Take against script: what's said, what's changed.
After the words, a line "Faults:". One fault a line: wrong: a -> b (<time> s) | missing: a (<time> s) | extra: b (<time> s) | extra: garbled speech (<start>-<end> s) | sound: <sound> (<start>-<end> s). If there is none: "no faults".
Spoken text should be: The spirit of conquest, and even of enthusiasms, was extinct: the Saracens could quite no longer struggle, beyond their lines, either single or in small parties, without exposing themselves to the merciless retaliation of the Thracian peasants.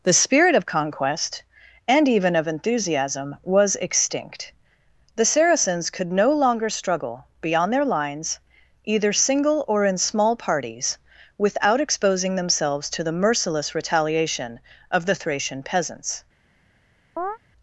The spirit of conquest, and even of enthusiasm, was extinct: the Saracens could no longer struggle, beyond their lines, either single or in small parties, without exposing themselves to the merciless retaliation of the Thracian peasants.
Faults:
wrong: enthusiasms -> enthusiasm (2.5 s)
missing: quite (6.1 s)
sound: chirp (17.2-17.4 s)